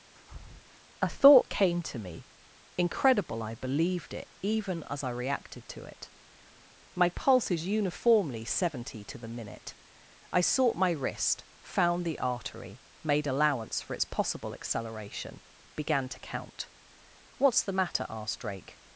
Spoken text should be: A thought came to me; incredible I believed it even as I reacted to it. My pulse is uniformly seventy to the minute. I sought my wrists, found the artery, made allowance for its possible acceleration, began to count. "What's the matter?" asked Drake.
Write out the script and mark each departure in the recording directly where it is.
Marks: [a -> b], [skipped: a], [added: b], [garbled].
A thought came to me; incredible I believed it even as I reacted to it. My pulse is uniformly seventy to the minute. I sought my [wrists, -> wrist] found the artery, made allowance for its possible acceleration, began to count. "What's the matter?" asked Drake.